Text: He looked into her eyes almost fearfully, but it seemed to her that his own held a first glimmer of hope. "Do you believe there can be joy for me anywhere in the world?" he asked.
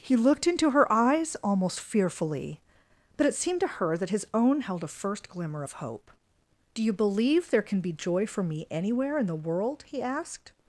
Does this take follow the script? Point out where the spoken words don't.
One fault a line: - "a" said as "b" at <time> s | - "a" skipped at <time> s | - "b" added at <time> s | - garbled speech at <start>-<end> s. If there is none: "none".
none